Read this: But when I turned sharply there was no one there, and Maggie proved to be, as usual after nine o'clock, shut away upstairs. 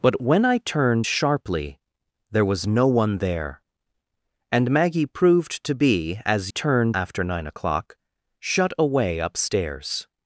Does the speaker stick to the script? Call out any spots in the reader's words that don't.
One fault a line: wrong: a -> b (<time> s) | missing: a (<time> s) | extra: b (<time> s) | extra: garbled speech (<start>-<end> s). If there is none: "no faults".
wrong: usual -> turned (6.5 s)